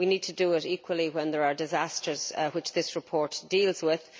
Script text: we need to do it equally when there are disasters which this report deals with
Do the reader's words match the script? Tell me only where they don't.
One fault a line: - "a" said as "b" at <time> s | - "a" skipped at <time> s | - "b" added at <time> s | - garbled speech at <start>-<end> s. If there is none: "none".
none